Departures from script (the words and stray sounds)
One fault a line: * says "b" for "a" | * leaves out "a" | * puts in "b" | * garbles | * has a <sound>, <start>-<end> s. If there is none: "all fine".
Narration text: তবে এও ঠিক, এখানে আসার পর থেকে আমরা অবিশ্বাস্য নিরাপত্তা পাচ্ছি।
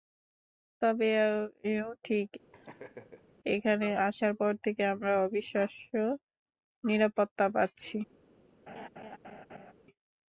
* has a laugh, 2.5-3.3 s
* has a laugh, 8.7-9.7 s